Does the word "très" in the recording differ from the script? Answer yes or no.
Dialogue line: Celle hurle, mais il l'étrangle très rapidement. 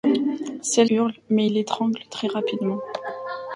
no